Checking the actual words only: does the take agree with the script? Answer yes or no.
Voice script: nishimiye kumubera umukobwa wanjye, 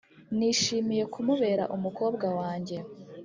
yes